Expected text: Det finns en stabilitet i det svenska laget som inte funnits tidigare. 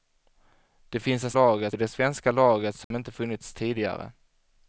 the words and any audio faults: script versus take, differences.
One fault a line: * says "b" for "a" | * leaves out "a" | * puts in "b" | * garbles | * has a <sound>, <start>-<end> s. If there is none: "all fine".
* says "laget" for "stabilitet"
* has a dropout, 2.8-2.9 s